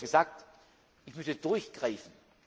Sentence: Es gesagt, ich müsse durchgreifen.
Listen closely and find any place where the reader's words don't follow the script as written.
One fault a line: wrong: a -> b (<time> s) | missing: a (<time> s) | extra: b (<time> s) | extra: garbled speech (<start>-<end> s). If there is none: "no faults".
no faults